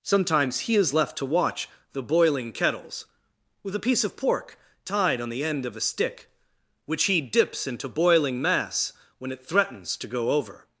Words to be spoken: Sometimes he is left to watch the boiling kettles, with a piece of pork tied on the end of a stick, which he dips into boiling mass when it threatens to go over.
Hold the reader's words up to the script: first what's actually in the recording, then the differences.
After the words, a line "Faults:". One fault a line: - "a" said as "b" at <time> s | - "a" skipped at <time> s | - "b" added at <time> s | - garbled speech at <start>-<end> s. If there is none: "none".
Sometimes he is left to watch the boiling kettles, with a piece of pork tied on the end of a stick, which he dips into boiling mass when it threatens to go over.
Faults:
none